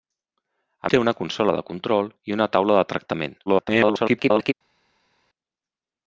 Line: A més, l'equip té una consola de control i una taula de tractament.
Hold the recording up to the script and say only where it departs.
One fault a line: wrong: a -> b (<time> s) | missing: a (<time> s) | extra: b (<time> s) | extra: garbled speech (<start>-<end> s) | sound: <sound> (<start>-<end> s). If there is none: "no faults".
missing: més l'equip (0.9 s)
extra: garbled speech (3.5-4.5 s)